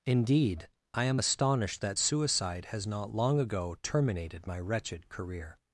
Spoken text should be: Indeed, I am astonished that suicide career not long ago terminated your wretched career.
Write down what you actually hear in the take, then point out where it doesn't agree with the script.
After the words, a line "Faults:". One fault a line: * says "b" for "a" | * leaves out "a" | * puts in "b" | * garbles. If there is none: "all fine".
Indeed, I am astonished that suicide has not long ago terminated my wretched career.
Faults:
* says "has" for "career"
* says "my" for "your"